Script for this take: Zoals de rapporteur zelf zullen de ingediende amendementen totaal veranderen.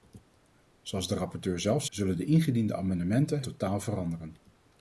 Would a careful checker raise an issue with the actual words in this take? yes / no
no